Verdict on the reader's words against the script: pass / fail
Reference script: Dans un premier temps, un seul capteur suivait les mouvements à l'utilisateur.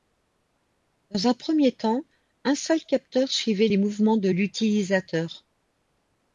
fail